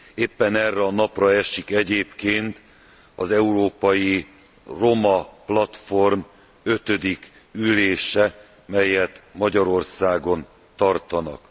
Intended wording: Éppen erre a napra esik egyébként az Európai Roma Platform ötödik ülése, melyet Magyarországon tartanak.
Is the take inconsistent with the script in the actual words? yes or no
no